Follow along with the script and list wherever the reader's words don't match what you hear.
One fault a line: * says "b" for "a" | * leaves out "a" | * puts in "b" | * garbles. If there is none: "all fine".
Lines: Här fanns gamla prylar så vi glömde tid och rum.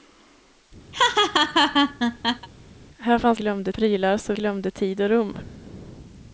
* says "glömde" for "gamla"
* leaves out "vi"